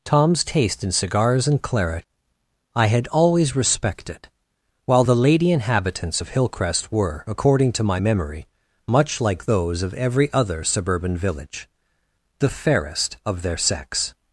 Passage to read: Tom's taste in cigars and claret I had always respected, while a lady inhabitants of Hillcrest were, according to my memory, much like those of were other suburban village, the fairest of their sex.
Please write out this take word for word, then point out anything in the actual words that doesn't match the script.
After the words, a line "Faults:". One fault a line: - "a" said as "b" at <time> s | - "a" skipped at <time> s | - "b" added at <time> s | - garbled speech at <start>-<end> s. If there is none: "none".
Tom's taste in cigars and claret I had always respected, while the lady inhabitants of Hillcrest were, according to my memory, much like those of every other suburban village, the fairest of their sex.
Faults:
- "a" said as "the" at 5.0 s
- "were" said as "every" at 9.9 s